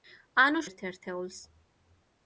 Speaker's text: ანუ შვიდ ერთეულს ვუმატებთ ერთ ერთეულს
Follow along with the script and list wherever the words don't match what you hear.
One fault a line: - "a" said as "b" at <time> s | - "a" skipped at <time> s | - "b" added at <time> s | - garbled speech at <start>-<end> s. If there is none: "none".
- "შვიდ ერთეულს ვუმატებთ" skipped at 0.6 s